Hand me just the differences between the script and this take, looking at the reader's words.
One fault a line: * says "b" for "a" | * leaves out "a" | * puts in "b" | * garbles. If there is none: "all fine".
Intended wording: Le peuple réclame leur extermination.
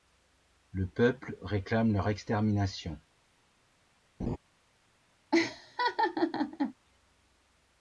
all fine